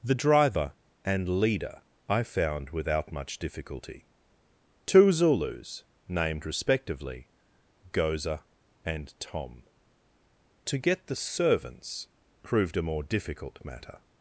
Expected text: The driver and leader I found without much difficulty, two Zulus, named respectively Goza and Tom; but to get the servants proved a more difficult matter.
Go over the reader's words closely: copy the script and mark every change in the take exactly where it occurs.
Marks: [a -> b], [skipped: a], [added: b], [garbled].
The driver and leader I found without much difficulty, two Zulus, named respectively Goza and Tom; [skipped: but] to get the servants proved a more difficult matter.